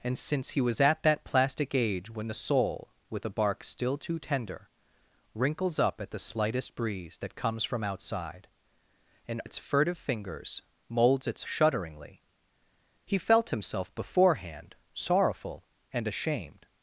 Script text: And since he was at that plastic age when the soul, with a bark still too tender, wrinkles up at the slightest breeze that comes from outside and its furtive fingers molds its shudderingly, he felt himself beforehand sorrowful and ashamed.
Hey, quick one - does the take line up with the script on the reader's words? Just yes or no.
yes